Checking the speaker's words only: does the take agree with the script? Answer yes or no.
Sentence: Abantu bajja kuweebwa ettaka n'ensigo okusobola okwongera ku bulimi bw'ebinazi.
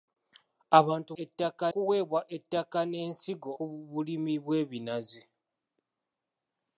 no